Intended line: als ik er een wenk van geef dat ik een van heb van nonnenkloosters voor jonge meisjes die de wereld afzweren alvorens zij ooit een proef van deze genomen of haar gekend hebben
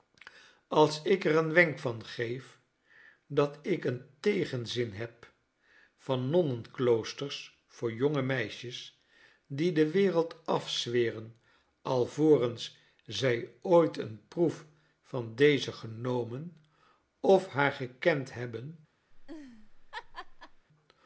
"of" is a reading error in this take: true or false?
false